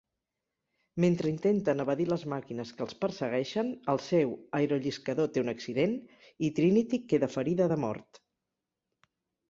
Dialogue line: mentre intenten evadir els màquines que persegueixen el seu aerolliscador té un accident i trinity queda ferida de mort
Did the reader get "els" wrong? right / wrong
wrong